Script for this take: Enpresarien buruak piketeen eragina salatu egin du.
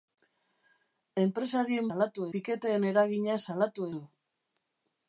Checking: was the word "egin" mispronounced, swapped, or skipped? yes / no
yes